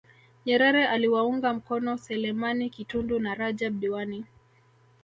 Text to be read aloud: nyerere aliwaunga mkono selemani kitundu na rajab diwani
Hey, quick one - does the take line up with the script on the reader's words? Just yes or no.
yes